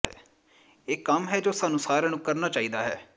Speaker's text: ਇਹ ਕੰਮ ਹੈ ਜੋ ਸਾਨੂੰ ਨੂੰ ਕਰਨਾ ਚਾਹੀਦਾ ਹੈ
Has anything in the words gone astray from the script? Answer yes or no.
yes